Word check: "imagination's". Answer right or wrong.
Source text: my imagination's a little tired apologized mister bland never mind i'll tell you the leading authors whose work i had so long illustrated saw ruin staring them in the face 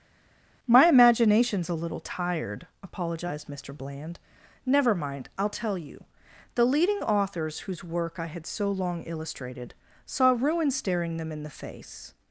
right